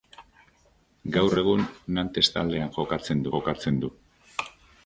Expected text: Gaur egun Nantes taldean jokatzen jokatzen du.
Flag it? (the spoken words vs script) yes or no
no